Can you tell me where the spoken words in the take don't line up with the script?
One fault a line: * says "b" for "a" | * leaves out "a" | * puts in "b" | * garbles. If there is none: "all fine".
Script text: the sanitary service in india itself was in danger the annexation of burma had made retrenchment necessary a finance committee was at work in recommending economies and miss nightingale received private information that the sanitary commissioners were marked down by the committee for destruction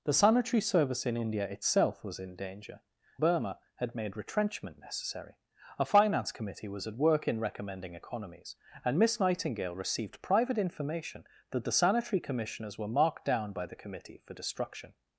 * leaves out "the annexation of"